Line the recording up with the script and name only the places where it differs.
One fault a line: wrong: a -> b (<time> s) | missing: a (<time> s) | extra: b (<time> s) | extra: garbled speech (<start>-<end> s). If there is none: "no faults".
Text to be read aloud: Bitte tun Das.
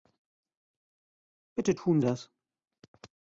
no faults